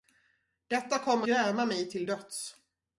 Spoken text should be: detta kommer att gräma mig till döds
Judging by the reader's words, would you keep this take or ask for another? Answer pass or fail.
fail